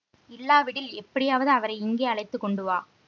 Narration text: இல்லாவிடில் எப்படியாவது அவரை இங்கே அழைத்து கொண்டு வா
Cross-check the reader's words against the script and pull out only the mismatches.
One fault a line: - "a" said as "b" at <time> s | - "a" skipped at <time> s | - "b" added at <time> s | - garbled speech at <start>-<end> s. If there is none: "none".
none